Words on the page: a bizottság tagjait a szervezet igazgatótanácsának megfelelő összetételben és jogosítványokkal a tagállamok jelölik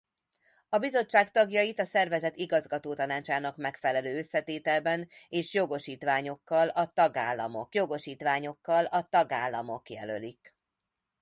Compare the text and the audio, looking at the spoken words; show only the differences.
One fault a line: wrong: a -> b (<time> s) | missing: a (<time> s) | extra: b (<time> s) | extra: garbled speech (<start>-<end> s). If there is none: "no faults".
extra: jogosítványokkal a tagállamok (7.7 s)